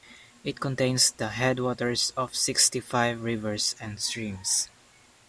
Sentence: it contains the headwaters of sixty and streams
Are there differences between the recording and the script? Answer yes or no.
yes